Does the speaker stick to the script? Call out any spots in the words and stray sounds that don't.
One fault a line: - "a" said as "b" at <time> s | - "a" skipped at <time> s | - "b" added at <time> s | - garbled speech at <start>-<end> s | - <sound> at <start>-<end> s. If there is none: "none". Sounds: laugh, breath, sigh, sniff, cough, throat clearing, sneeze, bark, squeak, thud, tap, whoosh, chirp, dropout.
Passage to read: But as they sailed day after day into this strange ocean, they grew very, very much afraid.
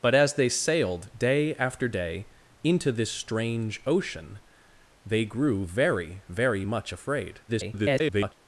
- garbled speech at 7.5-8.3 s